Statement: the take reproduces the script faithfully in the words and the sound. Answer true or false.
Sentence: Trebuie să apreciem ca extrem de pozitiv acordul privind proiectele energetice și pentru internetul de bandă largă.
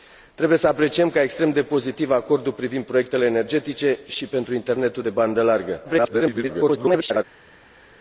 false